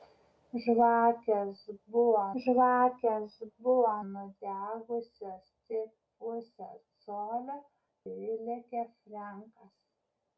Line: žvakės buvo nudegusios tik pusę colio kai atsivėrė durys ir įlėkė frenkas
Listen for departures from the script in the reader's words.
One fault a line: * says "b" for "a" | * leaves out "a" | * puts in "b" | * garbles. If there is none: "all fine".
* puts in "žvakės buvo"
* leaves out "kai atsivėrė durys"